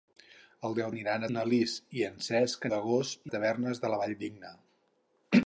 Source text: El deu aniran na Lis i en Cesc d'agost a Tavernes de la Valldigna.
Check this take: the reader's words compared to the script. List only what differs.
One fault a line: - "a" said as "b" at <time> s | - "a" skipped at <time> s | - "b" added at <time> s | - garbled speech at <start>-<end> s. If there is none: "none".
none